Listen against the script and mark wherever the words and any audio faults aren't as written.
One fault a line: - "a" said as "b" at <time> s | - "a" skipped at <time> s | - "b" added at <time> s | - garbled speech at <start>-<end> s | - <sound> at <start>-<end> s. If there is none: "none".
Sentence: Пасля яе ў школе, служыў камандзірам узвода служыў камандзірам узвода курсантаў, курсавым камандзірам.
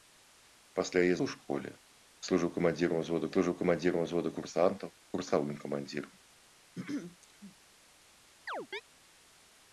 - throat clearing at 6.7-7.6 s
- chirp at 8.5-8.8 s